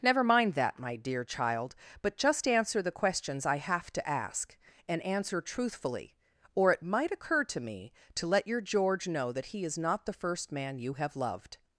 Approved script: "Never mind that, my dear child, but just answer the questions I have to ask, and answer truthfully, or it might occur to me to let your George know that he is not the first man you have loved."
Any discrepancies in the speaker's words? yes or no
no